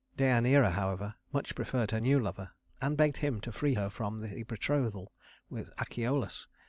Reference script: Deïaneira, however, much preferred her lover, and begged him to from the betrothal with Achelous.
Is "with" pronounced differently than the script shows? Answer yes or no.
no